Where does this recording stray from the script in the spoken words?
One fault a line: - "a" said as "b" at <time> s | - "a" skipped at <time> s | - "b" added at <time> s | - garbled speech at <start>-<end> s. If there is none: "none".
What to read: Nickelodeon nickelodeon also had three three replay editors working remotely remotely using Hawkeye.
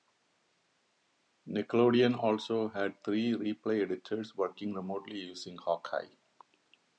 - "nickelodeon" skipped at 2.2 s
- "three" skipped at 3.3 s
- "remotely" skipped at 5.2 s